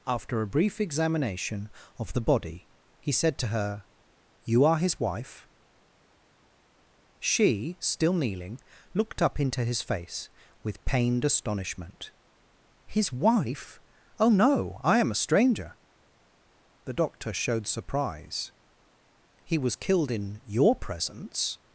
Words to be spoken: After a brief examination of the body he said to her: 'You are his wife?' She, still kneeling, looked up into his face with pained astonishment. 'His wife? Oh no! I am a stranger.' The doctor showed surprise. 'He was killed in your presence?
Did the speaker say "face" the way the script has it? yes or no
yes